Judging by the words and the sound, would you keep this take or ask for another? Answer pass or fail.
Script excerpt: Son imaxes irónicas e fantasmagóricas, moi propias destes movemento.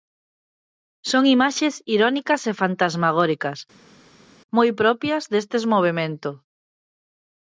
pass